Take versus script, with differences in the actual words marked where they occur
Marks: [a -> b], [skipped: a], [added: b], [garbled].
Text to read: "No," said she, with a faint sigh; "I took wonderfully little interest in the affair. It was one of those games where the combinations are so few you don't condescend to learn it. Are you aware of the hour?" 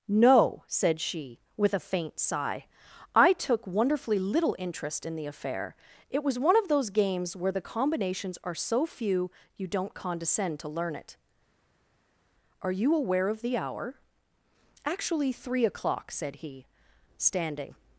"No," said she, with a faint sigh; "I took wonderfully little interest in the affair. It was one of those games where the combinations are so few you don't condescend to learn it. Are you aware of the hour?" [added: Actually three o'clock said he standing]